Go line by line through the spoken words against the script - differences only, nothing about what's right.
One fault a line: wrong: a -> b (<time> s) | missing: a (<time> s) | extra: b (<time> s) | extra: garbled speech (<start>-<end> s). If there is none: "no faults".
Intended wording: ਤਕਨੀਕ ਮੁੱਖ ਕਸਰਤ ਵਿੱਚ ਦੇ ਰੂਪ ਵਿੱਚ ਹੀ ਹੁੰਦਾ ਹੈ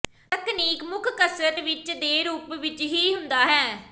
no faults